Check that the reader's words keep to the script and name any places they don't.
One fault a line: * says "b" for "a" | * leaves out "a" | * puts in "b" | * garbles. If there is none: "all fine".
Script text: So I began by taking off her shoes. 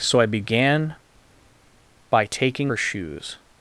* leaves out "off"